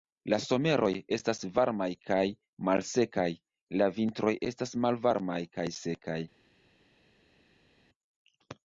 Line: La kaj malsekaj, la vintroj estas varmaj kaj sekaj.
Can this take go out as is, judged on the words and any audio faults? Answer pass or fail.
fail